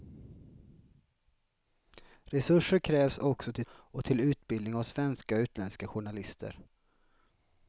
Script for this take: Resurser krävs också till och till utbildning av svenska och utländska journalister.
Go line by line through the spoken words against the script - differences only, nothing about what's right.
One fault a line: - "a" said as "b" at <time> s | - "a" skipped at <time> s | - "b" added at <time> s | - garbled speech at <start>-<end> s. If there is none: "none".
none